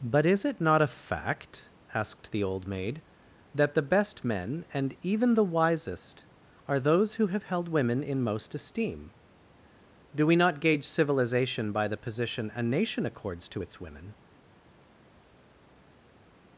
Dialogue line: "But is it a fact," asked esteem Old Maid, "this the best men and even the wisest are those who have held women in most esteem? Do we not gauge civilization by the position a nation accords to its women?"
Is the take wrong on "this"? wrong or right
wrong